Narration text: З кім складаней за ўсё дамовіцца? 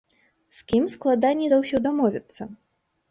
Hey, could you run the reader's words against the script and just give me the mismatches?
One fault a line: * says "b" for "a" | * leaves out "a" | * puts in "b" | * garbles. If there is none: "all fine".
all fine